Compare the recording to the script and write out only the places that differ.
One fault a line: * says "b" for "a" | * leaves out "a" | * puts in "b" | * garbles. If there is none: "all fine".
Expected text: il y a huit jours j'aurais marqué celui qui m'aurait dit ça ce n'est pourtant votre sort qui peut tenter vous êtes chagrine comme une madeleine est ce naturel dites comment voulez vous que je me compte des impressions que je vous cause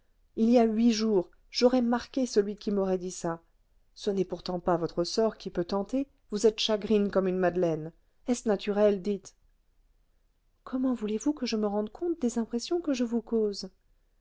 * puts in "pas"
* puts in "rende"